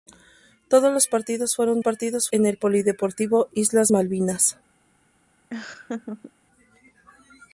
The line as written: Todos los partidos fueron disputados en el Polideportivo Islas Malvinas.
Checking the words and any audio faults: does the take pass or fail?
fail